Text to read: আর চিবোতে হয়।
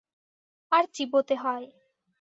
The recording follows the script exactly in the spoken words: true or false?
true